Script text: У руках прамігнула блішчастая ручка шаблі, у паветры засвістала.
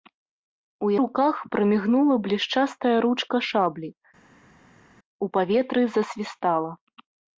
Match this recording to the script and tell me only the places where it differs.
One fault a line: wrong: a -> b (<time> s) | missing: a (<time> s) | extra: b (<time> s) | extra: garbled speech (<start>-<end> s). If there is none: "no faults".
no faults